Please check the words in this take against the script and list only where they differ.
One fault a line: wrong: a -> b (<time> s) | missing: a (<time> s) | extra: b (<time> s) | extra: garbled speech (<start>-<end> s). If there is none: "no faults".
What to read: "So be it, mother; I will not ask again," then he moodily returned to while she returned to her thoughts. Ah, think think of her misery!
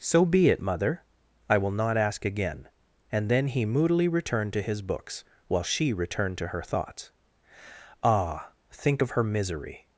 extra: and (3.1 s)
extra: his books (4.6 s)
missing: think (9.0 s)